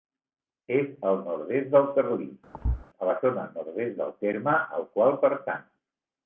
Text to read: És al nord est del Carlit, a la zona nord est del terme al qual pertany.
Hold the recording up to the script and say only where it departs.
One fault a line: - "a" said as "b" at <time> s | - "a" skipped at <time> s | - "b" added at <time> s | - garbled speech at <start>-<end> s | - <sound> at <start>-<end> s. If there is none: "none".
- thud at 2.5-2.9 s